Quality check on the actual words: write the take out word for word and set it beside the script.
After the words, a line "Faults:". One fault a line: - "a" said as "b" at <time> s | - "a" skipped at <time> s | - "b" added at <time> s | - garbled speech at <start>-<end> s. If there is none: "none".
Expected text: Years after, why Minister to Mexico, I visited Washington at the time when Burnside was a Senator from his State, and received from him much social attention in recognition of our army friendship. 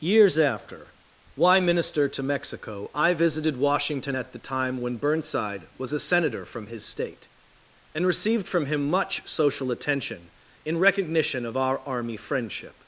Years after, why Minister to Mexico, I visited Washington at the time when Burnside was a Senator from his State, and received from him much social attention in recognition of our army friendship.
Faults:
none